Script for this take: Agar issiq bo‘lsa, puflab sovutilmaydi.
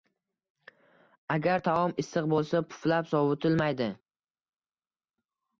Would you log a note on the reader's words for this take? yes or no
yes